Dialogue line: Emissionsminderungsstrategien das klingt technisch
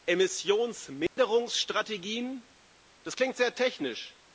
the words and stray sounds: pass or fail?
fail